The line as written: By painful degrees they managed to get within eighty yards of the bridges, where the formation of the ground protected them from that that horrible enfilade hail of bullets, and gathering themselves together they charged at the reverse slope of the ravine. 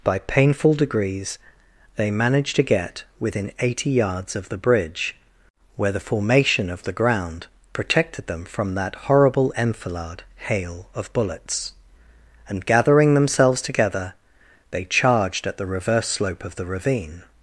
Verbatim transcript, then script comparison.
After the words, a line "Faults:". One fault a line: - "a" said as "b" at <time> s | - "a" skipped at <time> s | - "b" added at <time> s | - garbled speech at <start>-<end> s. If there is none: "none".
By painful degrees they managed to get within eighty yards of the bridge, where the formation of the ground protected them from that horrible enfilade hail of bullets, and gathering themselves together they charged at the reverse slope of the ravine.
Faults:
- "bridges" said as "bridge" at 4.6 s
- "that" skipped at 8.9 s